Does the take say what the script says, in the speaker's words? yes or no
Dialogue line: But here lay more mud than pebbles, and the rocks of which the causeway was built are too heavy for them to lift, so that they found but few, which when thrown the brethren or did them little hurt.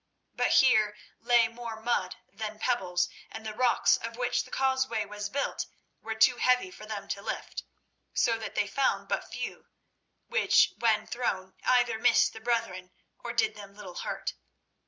no